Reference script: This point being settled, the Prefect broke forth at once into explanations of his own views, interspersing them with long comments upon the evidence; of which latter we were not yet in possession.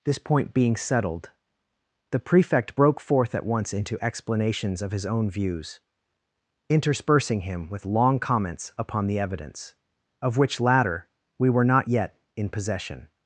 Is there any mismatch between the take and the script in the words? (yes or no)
yes